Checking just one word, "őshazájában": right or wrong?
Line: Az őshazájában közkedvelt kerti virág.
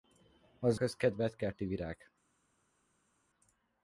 wrong